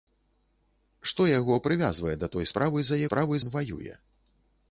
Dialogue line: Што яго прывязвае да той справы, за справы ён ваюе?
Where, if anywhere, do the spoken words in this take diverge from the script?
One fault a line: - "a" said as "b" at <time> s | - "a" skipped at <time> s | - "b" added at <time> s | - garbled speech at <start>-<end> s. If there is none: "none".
none